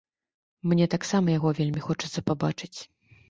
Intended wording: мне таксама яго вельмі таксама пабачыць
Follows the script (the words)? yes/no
no